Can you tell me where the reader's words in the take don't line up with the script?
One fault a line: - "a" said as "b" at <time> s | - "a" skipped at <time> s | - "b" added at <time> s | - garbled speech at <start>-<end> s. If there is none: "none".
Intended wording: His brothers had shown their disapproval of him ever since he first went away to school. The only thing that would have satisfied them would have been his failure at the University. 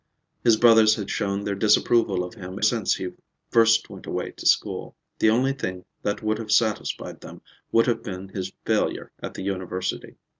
- "ever" skipped at 2.6 s